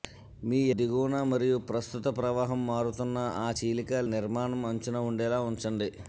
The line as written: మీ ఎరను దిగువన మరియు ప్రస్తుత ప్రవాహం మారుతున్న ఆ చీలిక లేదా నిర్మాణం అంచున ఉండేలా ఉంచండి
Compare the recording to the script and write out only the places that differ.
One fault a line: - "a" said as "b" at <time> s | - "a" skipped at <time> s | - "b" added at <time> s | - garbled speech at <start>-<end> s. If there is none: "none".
- "ఎరను" skipped at 0.6 s
- "లేదా" skipped at 4.0 s